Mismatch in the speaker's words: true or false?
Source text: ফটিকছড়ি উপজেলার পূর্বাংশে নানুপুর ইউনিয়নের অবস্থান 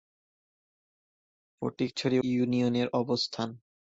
true